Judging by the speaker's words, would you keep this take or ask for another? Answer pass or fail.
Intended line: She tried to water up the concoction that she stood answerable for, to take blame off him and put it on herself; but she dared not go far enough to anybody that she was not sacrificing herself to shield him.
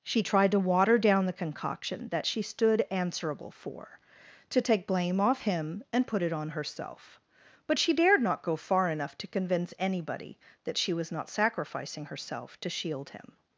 fail